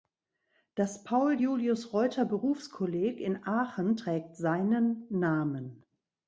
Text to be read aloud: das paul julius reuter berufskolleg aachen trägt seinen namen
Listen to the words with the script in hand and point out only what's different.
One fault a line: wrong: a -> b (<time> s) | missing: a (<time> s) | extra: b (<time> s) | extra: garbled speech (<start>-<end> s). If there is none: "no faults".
extra: in (3.2 s)